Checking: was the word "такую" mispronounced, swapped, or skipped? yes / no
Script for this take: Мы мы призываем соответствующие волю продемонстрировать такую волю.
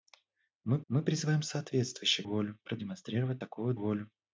no